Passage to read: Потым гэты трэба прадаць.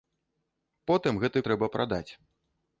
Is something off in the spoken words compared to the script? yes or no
no